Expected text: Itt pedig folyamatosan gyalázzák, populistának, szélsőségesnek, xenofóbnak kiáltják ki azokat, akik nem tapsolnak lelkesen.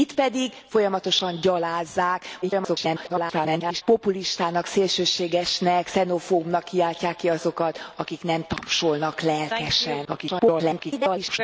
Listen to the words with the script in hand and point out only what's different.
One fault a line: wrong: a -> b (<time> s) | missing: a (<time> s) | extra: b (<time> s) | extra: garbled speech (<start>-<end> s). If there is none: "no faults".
extra: garbled speech (2.4-3.8 s)
extra: garbled speech (10.0-11.4 s)